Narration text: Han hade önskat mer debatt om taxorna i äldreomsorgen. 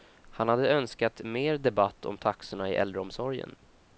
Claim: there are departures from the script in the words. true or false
false